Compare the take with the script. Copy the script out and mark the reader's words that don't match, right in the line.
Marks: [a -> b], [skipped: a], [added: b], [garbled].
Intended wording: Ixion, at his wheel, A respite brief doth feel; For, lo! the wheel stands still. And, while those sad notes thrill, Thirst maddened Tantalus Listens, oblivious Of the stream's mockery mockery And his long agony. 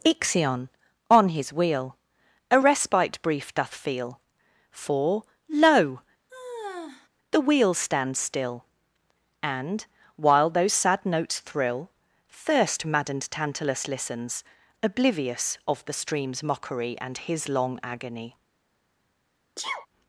Ixion, [at -> on] his wheel, A respite brief doth feel; For, lo! the wheel stands still. And, while those sad notes thrill, Thirst maddened Tantalus Listens, oblivious Of the stream's mockery [skipped: mockery] And his long agony.